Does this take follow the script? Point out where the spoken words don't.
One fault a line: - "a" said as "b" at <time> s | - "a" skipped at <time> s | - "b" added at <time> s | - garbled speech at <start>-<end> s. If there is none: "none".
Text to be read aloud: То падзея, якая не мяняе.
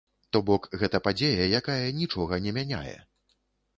- "бок гэта" added at 0.5 s
- "нічога" added at 2.0 s